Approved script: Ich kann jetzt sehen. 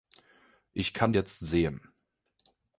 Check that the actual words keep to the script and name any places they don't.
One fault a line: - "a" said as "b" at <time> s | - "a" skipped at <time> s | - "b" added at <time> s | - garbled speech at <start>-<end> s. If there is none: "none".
none